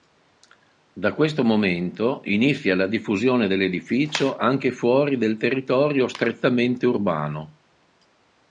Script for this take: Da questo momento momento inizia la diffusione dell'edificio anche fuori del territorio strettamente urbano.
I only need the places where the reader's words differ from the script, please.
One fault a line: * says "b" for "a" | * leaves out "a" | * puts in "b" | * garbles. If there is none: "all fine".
* leaves out "momento"